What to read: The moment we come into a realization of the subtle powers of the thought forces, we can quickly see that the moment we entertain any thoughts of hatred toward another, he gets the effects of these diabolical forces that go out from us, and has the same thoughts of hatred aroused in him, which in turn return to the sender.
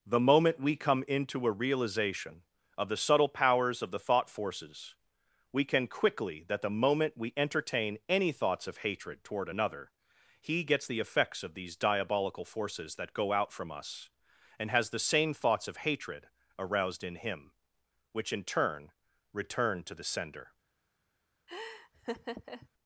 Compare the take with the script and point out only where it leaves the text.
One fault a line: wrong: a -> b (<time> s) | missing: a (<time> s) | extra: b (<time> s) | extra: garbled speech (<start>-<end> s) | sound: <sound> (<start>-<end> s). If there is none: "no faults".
missing: see (6.5 s)
sound: laugh (21.5-22.7 s)